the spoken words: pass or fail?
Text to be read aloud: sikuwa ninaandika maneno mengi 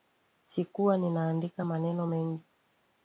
pass